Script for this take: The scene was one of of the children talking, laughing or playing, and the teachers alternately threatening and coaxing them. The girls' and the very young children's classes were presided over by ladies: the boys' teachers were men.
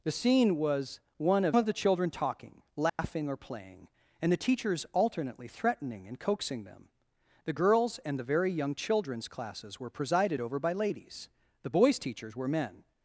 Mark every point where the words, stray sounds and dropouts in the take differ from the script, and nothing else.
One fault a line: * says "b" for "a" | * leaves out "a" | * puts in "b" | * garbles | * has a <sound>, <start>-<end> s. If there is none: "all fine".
* has a dropout, 2.9-3.0 s